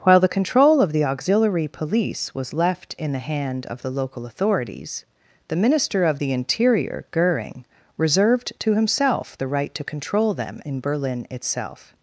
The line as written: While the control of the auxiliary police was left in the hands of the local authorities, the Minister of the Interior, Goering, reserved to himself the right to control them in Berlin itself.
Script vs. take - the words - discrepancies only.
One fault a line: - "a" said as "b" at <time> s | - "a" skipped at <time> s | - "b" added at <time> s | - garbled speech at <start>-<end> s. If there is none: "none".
- "hands" said as "hand" at 3.2 s